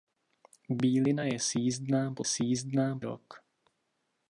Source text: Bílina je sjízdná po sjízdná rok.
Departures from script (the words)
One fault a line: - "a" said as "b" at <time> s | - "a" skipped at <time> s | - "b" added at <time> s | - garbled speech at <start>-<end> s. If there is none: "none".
none